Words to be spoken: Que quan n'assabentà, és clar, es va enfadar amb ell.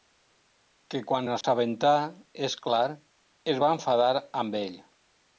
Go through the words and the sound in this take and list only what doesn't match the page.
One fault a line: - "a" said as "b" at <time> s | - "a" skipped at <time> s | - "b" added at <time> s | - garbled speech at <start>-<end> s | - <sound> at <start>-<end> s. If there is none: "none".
- dropout at 1.4-1.4 s